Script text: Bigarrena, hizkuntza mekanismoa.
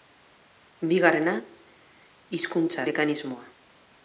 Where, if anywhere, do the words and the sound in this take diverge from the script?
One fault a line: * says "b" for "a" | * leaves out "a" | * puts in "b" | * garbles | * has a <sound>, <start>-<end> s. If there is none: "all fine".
all fine